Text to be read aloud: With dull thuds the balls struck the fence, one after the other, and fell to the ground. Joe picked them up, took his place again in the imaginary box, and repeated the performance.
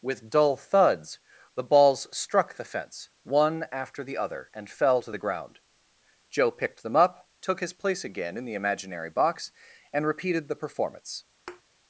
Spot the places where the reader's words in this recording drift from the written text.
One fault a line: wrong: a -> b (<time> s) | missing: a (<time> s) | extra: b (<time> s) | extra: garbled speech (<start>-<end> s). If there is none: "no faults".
no faults